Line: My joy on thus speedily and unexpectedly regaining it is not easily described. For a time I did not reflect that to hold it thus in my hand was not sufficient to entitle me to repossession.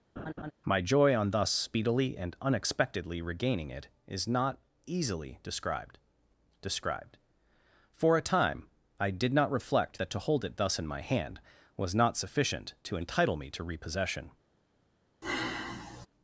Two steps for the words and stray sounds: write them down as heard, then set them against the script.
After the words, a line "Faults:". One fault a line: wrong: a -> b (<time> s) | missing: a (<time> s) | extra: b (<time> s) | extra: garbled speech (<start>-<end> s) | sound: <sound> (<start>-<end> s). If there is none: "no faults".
My joy on thus speedily and unexpectedly regaining it is not easily described described. For a time I did not reflect that to hold it thus in my hand was not sufficient to entitle me to repossession.
Faults:
sound: laugh (0.2-0.5 s)
extra: described (6.6 s)
sound: sigh (15.2-16.1 s)